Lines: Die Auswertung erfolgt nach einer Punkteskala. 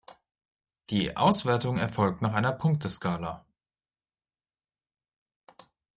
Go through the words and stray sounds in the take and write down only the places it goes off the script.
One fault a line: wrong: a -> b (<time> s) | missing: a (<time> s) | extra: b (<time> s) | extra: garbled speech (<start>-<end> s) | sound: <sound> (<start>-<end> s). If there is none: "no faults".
no faults